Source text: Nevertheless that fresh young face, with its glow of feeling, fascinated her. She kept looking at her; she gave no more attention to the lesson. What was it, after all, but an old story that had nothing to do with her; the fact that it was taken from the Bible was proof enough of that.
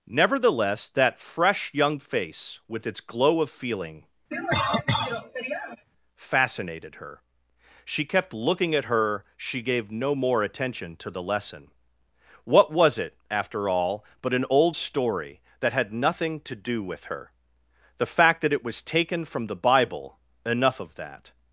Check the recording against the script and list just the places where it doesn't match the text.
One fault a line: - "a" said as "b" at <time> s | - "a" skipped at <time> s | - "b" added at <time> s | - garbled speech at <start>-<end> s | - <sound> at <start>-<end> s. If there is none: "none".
- cough at 4.3-5.9 s
- "was proof" skipped at 20.2 s